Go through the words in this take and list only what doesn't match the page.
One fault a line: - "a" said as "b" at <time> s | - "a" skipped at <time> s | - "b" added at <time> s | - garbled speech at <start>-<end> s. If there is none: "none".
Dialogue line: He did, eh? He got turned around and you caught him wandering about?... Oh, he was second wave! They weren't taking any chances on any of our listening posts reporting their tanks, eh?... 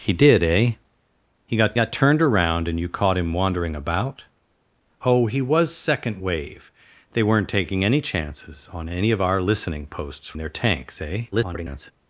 - "got" added at 1.7 s
- "reporting" skipped at 10.4 s
- garbled speech at 11.3-11.9 s